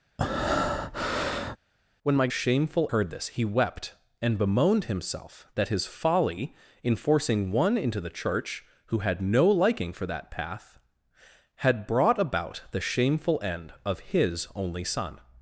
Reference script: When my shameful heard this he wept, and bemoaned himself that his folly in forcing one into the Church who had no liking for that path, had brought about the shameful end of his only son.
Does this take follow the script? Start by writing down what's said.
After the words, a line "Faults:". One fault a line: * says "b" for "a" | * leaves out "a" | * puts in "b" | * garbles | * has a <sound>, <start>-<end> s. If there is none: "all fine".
When my shameful heard this he wept, and bemoaned himself that his folly in forcing one into the Church who had no liking for that path, had brought about the shameful end of his only son.
Faults:
* has a breath, 0.2-1.6 s